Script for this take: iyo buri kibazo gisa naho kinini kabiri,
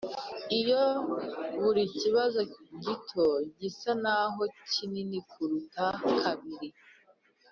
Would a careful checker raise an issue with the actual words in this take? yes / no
yes